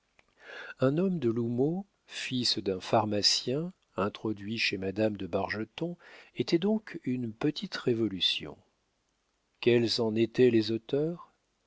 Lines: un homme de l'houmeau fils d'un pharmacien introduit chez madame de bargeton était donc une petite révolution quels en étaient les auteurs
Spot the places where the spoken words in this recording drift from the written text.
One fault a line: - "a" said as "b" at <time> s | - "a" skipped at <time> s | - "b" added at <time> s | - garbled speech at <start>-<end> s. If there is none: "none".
none